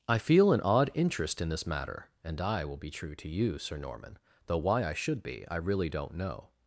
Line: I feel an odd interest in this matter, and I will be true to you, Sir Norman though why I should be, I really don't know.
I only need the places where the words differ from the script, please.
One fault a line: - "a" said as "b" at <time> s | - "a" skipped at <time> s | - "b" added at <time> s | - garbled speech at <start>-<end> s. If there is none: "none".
none